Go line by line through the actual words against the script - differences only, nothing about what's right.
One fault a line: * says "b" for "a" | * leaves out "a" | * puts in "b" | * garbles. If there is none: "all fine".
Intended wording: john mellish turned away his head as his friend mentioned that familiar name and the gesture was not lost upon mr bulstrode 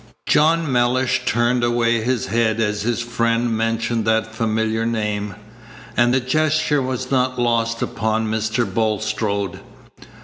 all fine